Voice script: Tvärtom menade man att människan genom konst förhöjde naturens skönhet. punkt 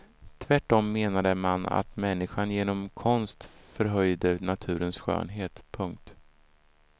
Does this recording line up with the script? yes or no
yes